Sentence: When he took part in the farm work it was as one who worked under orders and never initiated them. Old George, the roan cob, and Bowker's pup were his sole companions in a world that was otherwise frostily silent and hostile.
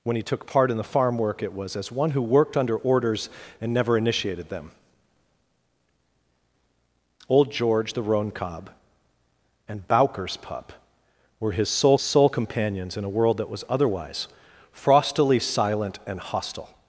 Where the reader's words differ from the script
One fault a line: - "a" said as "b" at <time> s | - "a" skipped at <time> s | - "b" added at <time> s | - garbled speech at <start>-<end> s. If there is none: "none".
- "sole" added at 12.0 s